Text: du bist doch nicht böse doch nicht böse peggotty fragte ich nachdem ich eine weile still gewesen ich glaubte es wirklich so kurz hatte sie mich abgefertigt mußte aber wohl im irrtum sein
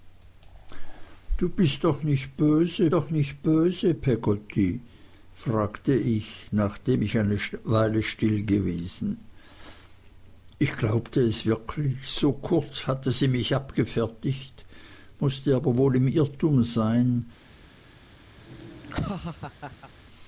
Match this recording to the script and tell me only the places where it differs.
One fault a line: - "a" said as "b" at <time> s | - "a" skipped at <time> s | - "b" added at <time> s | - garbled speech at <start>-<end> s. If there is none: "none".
none